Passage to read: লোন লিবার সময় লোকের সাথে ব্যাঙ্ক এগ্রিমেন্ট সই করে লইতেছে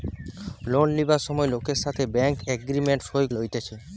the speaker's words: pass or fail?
fail